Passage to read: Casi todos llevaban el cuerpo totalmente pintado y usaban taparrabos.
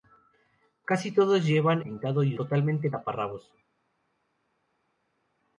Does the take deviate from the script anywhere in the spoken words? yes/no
yes